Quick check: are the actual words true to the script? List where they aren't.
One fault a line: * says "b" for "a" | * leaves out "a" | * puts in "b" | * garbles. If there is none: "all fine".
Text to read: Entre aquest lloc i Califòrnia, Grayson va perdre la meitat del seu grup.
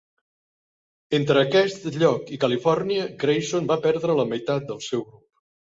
all fine